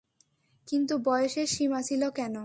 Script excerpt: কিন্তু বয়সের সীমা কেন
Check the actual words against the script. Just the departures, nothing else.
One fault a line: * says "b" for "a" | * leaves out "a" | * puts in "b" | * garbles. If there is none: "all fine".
* puts in "ছিল"